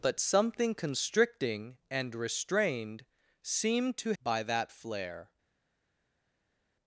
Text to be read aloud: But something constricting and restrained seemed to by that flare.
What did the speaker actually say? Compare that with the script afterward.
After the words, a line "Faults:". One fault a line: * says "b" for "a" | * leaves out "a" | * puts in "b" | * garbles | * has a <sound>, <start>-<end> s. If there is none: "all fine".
But something constricting and restrained seemed to by that flare.
Faults:
all fine